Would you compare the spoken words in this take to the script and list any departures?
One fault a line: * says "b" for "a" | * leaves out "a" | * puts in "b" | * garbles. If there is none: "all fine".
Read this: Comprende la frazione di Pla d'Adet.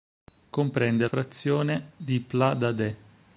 * leaves out "la"